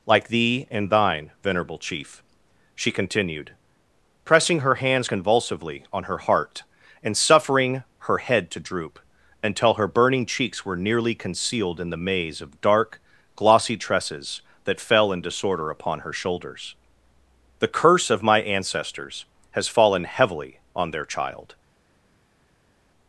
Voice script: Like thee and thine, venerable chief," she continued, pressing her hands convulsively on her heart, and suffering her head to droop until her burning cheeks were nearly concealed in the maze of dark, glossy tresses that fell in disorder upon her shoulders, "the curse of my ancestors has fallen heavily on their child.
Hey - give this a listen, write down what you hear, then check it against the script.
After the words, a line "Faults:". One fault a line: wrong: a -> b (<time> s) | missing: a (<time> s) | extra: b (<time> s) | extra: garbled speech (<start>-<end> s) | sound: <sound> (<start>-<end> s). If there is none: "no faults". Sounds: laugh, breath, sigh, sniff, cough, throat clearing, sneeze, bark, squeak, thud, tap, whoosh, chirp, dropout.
Like thee and thine, venerable chief," she continued, pressing her hands convulsively on her heart, and suffering her head to droop until her burning cheeks were nearly concealed in the maze of dark, glossy tresses that fell in disorder upon her shoulders, "the curse of my ancestors has fallen heavily on their child.
Faults:
no faults